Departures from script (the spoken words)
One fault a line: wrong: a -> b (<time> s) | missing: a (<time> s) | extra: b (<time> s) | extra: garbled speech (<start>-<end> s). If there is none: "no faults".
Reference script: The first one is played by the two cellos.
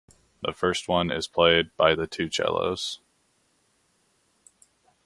no faults